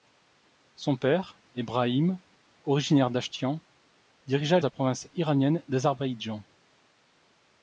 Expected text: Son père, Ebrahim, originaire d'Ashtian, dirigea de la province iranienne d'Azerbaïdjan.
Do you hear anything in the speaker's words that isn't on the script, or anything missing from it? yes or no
no